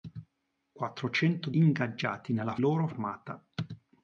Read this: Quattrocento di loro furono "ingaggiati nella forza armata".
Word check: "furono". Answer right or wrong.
wrong